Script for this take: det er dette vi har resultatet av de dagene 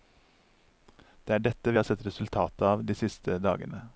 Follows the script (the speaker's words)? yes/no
no